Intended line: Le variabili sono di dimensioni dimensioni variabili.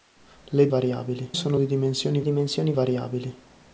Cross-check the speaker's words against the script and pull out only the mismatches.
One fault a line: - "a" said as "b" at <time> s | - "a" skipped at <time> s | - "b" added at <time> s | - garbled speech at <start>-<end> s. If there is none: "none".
none